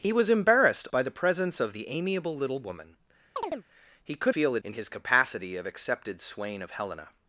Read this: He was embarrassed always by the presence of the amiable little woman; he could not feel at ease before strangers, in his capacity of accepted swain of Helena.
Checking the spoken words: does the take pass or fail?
fail